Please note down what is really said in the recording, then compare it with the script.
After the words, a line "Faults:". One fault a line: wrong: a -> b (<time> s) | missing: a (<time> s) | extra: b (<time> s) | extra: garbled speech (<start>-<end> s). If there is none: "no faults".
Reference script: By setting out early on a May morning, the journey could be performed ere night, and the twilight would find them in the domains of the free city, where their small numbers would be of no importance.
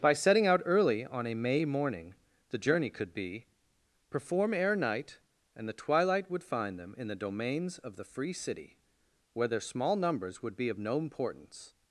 By setting out early on a May morning, the journey could be perform ere night, and the twilight would find them in the domains of the free city, where their small numbers would be of no importance.
Faults:
wrong: performed -> perform (4.1 s)